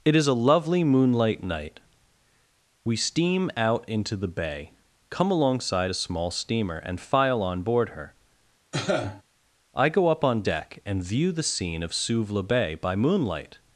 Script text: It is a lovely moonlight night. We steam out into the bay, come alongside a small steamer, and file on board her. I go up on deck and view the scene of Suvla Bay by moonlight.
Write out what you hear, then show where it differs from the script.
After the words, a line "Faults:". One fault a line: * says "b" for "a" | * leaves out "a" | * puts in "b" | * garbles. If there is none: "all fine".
It is a lovely moonlight night. We steam out into the bay, come alongside a small steamer, and file on board her. I go up on deck and view the scene of Suvla Bay by moonlight.
Faults:
all fine